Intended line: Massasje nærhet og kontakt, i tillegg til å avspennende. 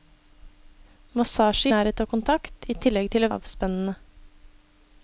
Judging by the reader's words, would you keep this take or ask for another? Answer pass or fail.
pass